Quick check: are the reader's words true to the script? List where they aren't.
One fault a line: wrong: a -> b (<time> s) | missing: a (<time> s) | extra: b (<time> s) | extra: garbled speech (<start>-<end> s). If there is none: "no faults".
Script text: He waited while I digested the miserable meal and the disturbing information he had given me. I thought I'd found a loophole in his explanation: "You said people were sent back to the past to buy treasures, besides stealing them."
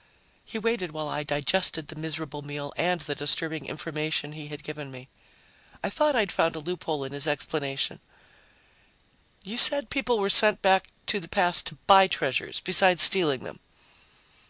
no faults